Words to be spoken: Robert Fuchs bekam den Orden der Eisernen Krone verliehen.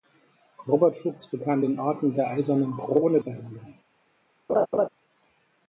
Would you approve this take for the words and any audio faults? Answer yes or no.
no